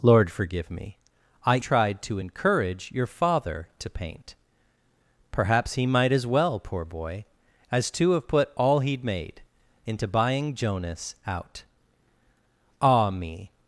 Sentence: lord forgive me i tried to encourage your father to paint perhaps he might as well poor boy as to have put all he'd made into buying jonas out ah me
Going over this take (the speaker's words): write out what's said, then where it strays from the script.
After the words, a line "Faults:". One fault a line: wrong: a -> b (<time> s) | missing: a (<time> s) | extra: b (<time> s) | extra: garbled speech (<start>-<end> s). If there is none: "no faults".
lord forgive me i tried to encourage your father to paint perhaps he might as well poor boy as to have put all he'd made into buying jonas out ah me
Faults:
no faults